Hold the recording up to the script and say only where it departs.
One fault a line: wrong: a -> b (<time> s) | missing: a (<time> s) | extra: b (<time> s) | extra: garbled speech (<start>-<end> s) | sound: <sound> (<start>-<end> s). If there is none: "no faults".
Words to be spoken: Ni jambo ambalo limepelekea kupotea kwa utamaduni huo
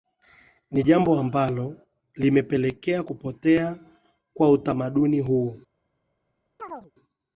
sound: chirp (6.6-6.9 s)